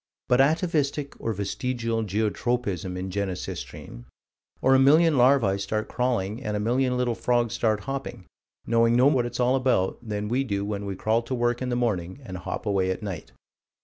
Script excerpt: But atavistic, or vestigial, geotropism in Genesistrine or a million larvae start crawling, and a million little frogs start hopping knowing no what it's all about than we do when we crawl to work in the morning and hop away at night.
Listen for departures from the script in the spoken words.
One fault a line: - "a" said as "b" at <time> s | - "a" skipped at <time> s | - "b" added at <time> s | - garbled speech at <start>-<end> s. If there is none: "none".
none